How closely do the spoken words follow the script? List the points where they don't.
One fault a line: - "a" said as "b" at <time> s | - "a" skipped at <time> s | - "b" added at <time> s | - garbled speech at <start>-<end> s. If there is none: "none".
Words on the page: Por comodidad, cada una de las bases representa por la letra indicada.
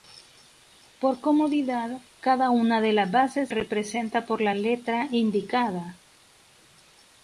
none